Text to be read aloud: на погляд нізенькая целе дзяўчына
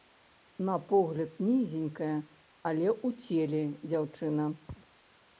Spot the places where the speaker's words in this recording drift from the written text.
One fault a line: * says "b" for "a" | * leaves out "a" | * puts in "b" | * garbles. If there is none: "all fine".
* puts in "але ў"